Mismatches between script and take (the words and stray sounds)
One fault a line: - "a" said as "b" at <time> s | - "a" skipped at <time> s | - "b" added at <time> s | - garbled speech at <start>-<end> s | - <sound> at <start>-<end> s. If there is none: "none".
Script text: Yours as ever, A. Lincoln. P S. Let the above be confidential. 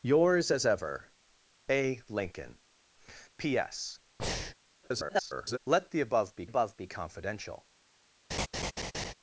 - breath at 4.2-4.5 s
- garbled speech at 4.8-5.6 s
- "above be" added at 6.4 s
- laugh at 8.3-9.1 s